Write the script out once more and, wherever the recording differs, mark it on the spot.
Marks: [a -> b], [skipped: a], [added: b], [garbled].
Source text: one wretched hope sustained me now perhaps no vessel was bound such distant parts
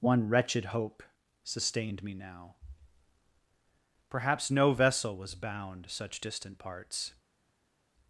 one wretched hope sustained me now perhaps no vessel was bound such distant parts